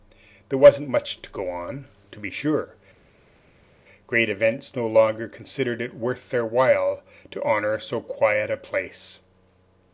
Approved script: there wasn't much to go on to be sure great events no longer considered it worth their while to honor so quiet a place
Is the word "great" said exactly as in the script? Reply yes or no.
yes